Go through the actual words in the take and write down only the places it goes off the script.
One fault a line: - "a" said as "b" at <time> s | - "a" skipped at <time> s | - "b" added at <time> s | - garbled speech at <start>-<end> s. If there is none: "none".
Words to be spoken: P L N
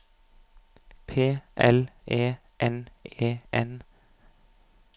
- "E N E" added at 2.1 s